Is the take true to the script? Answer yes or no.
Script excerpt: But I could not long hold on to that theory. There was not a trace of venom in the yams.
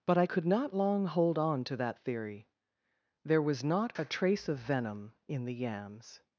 yes